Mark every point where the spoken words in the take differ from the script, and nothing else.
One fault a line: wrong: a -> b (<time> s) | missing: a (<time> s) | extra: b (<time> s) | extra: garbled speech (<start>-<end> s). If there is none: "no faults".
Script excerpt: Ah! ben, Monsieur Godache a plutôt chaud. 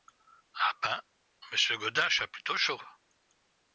no faults